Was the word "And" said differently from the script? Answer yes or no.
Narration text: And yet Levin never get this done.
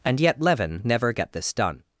no